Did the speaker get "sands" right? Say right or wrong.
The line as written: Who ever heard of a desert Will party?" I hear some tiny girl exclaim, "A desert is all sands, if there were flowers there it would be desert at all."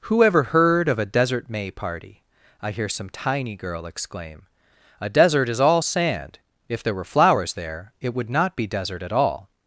wrong